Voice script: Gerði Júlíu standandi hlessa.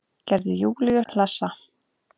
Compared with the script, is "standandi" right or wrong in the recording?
wrong